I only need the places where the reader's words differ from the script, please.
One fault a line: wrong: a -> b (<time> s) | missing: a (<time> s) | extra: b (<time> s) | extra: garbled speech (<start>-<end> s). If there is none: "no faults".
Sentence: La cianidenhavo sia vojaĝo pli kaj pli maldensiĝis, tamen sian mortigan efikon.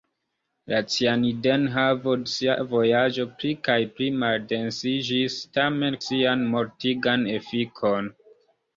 no faults